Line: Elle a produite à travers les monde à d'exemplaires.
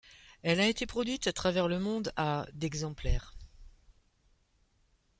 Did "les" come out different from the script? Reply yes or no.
yes